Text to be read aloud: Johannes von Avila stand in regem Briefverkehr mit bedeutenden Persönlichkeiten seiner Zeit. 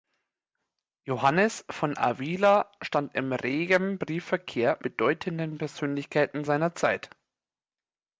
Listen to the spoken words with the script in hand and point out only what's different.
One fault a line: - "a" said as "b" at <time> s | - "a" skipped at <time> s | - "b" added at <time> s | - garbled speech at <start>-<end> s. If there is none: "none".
- "mit" skipped at 4.8 s